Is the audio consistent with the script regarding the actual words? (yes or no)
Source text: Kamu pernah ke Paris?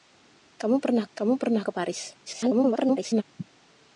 no